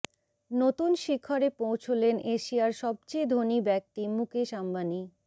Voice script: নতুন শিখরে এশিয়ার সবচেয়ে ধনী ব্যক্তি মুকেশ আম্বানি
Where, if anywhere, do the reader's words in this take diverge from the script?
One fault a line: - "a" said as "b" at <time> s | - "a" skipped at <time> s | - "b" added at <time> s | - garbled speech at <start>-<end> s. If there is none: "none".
- "পৌঁছলেন" added at 1.6 s